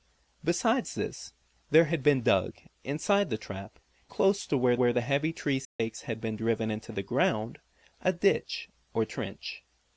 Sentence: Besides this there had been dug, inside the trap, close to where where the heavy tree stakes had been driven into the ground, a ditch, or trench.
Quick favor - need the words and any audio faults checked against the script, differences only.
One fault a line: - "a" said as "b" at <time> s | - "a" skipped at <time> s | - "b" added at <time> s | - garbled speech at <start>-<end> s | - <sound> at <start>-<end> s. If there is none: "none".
- dropout at 5.6-5.8 s